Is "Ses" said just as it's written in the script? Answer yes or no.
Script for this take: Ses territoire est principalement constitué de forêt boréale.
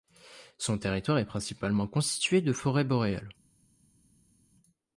no